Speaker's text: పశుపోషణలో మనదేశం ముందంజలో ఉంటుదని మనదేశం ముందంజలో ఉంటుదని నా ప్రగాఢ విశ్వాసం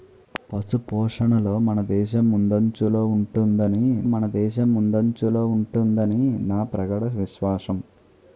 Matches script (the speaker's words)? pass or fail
pass